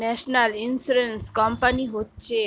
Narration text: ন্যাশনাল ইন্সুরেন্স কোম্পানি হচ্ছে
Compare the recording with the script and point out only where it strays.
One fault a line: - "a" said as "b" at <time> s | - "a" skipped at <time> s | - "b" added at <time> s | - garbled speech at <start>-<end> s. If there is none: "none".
none